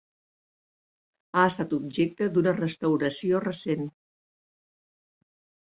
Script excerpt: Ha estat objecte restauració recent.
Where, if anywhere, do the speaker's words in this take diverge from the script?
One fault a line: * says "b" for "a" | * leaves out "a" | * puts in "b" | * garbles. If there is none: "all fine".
* puts in "d'una"